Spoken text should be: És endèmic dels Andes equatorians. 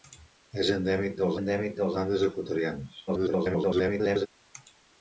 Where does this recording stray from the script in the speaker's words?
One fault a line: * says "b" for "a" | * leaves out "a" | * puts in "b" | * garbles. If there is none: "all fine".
* puts in "endèmic dels"
* garbles